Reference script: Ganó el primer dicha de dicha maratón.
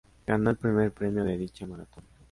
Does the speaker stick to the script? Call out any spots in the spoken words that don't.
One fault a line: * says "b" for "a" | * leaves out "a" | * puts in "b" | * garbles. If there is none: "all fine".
* says "premio" for "dicha"